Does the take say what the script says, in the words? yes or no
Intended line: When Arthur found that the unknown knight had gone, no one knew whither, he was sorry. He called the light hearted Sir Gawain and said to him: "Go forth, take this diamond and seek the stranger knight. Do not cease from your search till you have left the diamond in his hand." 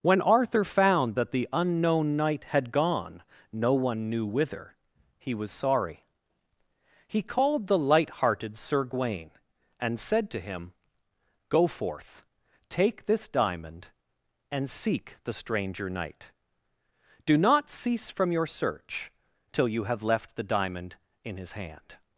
yes